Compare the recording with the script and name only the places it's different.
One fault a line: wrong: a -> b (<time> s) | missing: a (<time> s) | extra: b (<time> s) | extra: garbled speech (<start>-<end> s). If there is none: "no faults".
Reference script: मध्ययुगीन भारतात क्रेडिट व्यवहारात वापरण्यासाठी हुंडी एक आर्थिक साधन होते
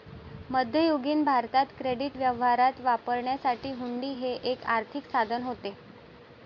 extra: हे (4.2 s)